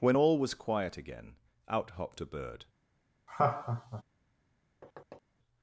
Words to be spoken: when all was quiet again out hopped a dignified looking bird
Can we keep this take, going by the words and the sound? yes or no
no